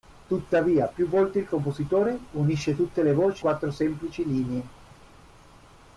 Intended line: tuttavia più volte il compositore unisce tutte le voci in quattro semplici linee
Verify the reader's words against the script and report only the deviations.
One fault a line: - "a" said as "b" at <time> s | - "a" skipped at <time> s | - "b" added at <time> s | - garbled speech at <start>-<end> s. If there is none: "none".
- "in" skipped at 3.5 s